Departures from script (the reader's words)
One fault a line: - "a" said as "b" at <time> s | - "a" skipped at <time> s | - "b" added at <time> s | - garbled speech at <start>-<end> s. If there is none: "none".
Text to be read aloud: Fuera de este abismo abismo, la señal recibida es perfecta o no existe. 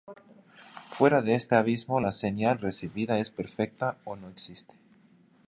- "abismo" skipped at 2.0 s